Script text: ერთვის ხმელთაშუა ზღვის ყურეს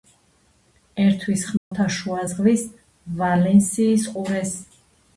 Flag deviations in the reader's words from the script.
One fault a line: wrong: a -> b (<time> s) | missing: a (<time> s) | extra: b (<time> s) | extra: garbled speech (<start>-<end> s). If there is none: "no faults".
extra: ვალენსიის (3.2 s)